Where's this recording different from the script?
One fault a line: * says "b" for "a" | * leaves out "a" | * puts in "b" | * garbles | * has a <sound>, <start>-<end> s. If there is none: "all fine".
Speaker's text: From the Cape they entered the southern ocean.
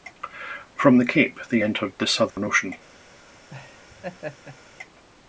* has a dropout, 2.3-2.4 s
* has a laugh, 3.5-4.6 s